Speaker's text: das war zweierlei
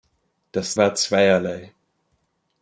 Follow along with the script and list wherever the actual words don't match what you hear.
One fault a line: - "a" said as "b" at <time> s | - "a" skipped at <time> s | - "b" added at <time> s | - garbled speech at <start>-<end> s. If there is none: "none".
none